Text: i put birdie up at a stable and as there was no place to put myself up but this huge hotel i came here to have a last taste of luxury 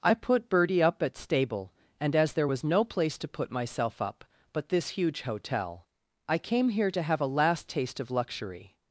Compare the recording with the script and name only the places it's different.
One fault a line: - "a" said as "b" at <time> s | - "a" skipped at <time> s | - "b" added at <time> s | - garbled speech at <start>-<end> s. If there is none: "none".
- "a" skipped at 1.1 s